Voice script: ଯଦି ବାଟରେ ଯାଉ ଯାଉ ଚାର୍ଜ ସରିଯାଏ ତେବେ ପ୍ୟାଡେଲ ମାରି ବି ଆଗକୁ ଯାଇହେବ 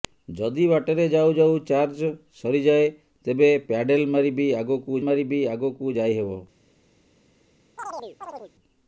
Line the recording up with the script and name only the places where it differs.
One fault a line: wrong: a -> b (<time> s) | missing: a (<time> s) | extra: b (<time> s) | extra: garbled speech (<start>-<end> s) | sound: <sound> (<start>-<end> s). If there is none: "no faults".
extra: ମାରି ବି ଆଗକୁ (5.0 s)
sound: chirp (7.8-8.5 s)